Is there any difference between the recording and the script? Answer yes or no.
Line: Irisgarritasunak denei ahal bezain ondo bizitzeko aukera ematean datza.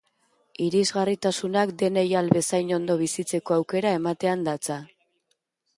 no